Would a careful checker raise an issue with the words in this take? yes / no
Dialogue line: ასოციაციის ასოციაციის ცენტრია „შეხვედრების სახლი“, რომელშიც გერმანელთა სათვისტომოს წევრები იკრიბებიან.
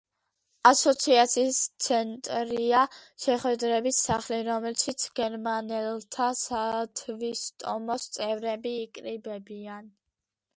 yes